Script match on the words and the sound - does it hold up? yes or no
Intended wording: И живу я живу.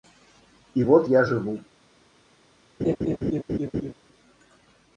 no